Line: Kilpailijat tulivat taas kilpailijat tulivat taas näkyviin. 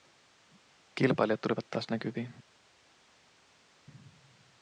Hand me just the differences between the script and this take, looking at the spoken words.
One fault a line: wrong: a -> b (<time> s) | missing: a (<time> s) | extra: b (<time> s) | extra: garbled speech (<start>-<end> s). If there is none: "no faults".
missing: kilpailijat tulivat taas (1.9 s)